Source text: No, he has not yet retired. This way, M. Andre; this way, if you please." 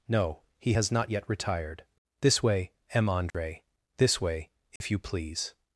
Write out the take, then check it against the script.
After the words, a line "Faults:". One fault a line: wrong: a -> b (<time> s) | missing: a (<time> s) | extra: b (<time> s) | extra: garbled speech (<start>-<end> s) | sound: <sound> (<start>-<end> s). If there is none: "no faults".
No, he has not yet retired. This way, M. Andre; this way, if you please."
Faults:
sound: dropout (3.3-3.3 s)
sound: dropout (4.8-4.8 s)